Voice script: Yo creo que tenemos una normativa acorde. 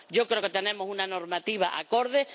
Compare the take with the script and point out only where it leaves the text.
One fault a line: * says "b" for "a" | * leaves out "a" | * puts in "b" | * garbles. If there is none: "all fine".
all fine